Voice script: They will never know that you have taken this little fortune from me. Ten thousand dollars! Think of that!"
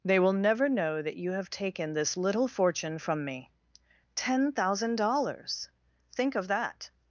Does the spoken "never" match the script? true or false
true